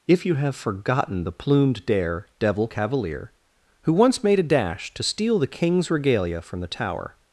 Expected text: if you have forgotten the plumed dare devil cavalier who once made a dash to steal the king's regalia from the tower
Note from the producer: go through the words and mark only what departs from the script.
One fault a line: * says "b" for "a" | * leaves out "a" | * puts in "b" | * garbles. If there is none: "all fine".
all fine